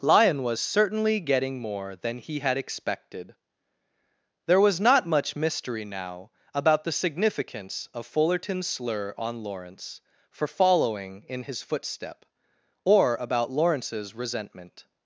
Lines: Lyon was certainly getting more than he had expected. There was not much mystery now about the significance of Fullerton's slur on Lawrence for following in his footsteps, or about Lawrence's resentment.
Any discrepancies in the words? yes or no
yes